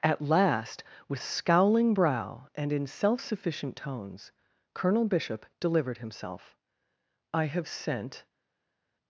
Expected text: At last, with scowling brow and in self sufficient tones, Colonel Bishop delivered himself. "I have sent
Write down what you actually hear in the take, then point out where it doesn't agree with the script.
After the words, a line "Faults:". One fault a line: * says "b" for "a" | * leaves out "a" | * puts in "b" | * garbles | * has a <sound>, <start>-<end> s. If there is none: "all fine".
At last, with scowling brow and in self sufficient tones, Colonel Bishop delivered himself. "I have sent
Faults:
all fine